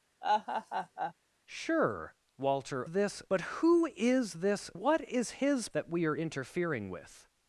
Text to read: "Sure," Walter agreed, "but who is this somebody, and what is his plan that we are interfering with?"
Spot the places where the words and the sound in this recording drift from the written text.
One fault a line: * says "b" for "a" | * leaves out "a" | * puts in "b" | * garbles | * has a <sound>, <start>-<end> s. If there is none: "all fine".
* has a laugh, 0.2-1.1 s
* says "this" for "agreed"
* leaves out "somebody and"
* leaves out "plan"